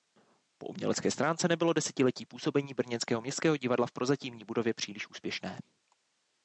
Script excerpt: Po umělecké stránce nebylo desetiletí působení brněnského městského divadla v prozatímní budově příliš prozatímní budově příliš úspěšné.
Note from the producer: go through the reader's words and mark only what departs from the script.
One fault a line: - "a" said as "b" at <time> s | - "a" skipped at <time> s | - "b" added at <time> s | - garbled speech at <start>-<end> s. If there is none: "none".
- "prozatímní budově příliš" skipped at 5.1 s